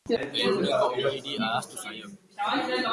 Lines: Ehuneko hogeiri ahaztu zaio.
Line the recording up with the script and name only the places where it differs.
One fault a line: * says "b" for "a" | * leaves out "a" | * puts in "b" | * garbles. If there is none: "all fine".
all fine